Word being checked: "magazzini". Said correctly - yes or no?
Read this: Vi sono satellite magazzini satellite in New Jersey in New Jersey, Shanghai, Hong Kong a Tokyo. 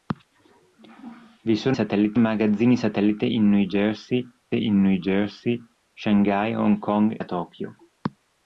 yes